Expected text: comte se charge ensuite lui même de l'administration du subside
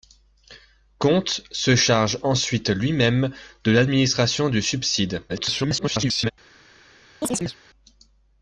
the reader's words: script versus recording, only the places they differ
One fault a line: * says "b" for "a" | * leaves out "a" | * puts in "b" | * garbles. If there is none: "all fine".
* garbles